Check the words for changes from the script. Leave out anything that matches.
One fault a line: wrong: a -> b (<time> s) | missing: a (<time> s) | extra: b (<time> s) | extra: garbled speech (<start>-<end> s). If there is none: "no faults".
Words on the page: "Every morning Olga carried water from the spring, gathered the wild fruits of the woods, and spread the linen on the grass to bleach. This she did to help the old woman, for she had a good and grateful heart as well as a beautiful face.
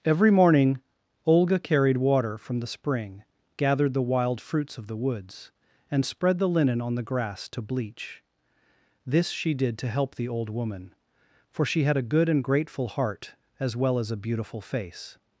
no faults